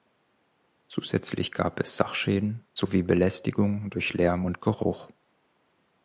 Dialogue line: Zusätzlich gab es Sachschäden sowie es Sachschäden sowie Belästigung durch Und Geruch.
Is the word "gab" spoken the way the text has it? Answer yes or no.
yes